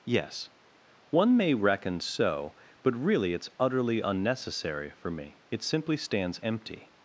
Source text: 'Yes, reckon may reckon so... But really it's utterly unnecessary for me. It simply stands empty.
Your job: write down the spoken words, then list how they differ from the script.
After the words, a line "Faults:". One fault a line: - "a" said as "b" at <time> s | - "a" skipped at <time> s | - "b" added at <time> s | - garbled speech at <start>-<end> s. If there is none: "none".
'Yes, one may reckon so... But really it's utterly unnecessary for me. It simply stands empty.
Faults:
- "reckon" said as "one" at 1.1 s